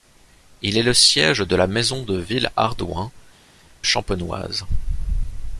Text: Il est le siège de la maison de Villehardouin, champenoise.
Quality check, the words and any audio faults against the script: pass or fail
pass